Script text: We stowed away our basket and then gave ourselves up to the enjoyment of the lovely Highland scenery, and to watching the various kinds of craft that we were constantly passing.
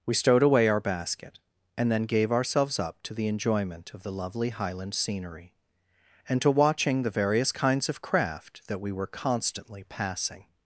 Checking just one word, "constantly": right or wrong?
right